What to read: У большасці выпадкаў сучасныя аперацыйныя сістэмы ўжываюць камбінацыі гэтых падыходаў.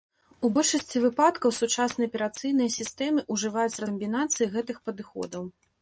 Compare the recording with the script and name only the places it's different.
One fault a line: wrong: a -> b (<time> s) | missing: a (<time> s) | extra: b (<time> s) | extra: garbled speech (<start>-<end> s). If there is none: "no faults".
no faults